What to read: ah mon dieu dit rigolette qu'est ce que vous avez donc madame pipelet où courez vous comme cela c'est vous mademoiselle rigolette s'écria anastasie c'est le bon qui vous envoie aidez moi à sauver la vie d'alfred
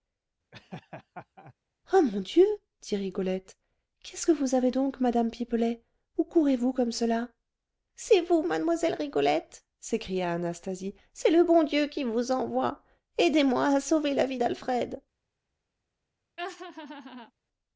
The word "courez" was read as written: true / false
true